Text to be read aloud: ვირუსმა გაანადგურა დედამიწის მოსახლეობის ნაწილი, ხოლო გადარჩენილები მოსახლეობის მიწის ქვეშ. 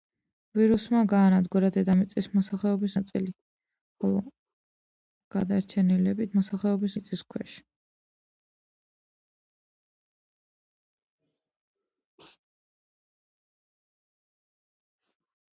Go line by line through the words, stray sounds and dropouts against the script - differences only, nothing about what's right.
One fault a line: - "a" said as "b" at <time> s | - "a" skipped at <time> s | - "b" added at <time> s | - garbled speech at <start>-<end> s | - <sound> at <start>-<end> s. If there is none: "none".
none